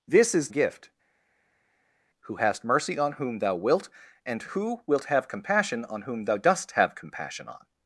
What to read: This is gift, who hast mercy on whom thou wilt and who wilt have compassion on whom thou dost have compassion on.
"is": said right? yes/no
yes